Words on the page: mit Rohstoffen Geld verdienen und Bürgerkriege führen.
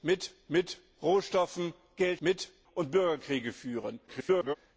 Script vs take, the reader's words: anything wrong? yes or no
yes